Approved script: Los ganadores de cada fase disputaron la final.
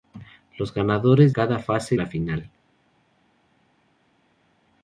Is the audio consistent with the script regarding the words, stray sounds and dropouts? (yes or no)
no